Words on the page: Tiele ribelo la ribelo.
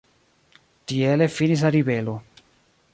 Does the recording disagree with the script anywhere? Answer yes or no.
yes